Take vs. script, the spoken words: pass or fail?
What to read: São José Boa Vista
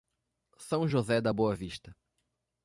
fail